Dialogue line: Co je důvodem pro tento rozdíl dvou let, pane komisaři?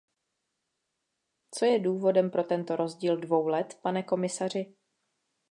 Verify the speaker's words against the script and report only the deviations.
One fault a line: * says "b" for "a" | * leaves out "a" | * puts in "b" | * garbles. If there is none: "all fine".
all fine